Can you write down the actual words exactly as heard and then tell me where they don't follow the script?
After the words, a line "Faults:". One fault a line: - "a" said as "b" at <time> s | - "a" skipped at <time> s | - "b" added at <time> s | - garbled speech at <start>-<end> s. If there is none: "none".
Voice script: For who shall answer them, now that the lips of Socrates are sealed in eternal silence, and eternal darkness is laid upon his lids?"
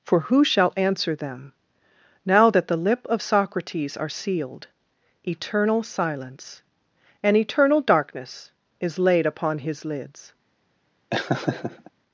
For who shall answer them, now that the lip of Socrates are sealed eternal silence, and eternal darkness is laid upon his lids?"
Faults:
- "lips" said as "lip" at 2.8 s
- "in" skipped at 4.7 s